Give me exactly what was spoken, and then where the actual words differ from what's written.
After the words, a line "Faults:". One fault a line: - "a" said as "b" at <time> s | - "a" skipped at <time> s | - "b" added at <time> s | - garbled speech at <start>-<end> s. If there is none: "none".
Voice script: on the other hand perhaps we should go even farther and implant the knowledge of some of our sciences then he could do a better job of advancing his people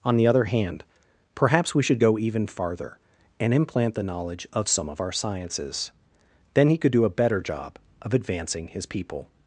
on the other hand perhaps we should go even farther and implant the knowledge of some of our sciences then he could do a better job of advancing his people
Faults:
none